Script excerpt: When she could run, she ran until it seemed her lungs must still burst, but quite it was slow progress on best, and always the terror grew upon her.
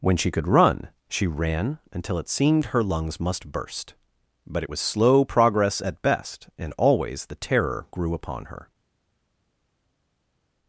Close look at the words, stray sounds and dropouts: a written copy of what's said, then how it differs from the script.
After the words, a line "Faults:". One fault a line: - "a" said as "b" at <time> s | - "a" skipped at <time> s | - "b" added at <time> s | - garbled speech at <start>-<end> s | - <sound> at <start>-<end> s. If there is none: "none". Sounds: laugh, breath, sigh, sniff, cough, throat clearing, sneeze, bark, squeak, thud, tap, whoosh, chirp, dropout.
When she could run, she ran until it seemed her lungs must burst, but it was slow progress at best, and always the terror grew upon her.
Faults:
- "still" skipped at 3.5 s
- "quite" skipped at 4.6 s
- "on" said as "at" at 5.8 s